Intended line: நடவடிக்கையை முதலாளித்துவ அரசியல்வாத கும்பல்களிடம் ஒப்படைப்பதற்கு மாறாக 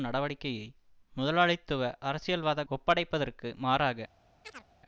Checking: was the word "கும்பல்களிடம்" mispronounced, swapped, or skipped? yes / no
yes